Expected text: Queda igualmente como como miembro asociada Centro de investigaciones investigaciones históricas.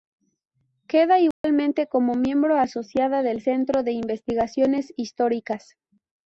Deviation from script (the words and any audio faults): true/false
true